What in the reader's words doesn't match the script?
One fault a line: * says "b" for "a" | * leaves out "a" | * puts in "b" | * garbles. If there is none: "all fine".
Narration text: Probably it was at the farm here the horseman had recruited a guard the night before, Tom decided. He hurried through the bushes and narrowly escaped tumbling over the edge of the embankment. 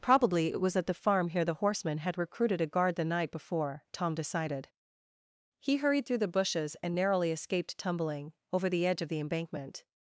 all fine